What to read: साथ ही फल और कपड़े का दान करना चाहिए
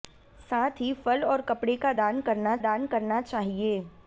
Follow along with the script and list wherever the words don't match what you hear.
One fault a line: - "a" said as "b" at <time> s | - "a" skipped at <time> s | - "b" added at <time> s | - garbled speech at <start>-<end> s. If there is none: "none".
- "दान करना" added at 2.6 s